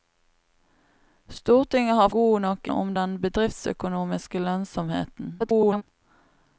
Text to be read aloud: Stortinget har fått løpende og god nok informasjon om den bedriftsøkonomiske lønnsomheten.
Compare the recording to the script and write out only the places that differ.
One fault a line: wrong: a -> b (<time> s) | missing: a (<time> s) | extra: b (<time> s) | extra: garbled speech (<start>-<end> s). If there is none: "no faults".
missing: fått løpende og (2.1 s)
missing: informasjon (2.7 s)
extra: garbled speech (5.4-5.8 s)